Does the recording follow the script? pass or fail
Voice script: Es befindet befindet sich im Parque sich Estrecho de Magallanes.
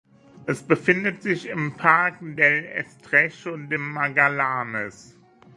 fail